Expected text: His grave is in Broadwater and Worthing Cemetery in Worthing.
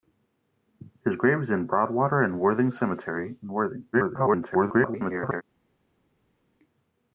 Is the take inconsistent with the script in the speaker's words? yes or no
yes